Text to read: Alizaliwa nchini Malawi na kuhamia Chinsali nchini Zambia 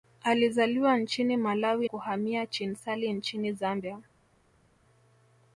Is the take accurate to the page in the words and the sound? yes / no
no